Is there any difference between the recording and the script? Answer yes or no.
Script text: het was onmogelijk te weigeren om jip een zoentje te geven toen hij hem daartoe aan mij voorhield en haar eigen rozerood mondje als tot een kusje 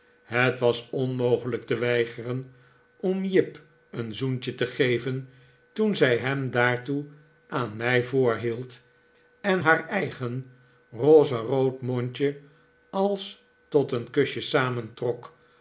yes